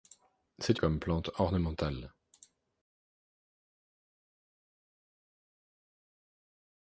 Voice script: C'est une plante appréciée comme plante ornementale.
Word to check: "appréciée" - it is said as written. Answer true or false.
false